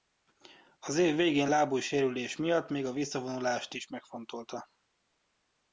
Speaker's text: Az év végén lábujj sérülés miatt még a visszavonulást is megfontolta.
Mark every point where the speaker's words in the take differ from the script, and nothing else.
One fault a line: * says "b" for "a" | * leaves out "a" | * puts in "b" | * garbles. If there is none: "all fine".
all fine